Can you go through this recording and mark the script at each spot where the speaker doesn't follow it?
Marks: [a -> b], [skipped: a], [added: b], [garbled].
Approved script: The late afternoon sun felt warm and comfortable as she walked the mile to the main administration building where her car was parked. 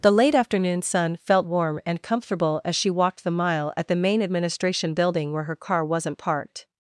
The late afternoon sun felt warm and comfortable as she walked the mile [to -> at] the main administration building where her car [was -> wasn't] parked.